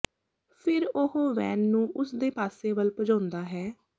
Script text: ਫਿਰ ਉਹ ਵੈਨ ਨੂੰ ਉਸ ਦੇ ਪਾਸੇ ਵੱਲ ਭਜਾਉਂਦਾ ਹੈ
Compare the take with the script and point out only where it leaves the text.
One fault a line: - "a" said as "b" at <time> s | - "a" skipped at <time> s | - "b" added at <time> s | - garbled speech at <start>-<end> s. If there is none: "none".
none